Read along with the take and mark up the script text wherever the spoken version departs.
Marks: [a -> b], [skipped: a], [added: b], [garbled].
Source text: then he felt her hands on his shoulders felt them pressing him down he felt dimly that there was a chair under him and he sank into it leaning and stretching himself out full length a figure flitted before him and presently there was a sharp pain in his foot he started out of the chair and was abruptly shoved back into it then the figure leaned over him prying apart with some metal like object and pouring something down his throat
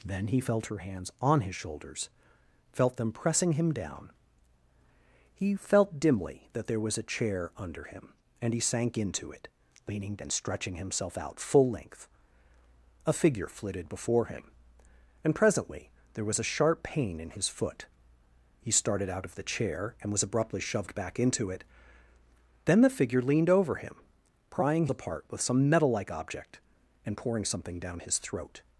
then he felt her hands on his shoulders felt them pressing him down he felt dimly that there was a chair under him and he sank into it leaning and stretching himself out full length a figure flitted before him and presently there was a sharp pain in his foot he started out of the chair and was abruptly shoved back into it then the figure leaned over him prying apart with some metal like object and pouring something down his throat